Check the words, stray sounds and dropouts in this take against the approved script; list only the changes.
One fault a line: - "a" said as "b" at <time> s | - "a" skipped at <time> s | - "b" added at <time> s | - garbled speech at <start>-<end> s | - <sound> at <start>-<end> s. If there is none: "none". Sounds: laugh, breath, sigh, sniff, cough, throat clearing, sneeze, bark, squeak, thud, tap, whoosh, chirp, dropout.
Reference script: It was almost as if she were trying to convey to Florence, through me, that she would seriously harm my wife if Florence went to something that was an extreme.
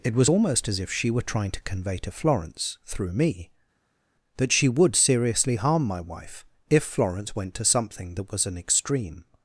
none